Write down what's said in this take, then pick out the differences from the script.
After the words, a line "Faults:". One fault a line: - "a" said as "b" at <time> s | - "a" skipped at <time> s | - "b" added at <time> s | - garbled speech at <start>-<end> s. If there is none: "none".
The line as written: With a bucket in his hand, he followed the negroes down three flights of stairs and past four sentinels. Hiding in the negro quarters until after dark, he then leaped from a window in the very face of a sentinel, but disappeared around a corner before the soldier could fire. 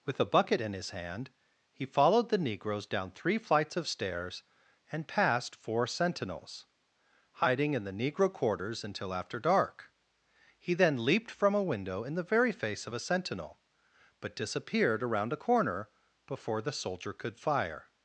With a bucket in his hand, he followed the negroes down three flights of stairs and past four sentinels. Hiding in the negro quarters until after dark, he then leaped from a window in the very face of a sentinel, but disappeared around a corner before the soldier could fire.
Faults:
none